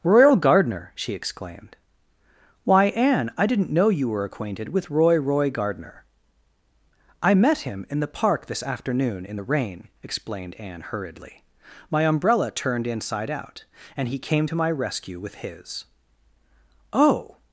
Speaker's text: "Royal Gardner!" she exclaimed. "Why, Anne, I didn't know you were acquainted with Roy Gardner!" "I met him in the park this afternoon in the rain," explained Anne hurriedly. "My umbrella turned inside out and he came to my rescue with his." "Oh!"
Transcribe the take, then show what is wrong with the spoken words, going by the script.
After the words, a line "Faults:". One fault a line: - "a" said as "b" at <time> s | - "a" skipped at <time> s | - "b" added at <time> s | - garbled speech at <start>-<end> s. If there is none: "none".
"Royal Gardner!" she exclaimed. "Why, Anne, I didn't know you were acquainted with Roy Roy Gardner!" "I met him in the park this afternoon in the rain," explained Anne hurriedly. "My umbrella turned inside out and he came to my rescue with his." "Oh!"
Faults:
- "Roy" added at 5.2 s